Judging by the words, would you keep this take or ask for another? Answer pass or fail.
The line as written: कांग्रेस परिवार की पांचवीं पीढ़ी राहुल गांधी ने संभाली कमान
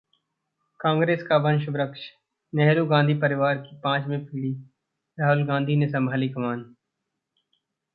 fail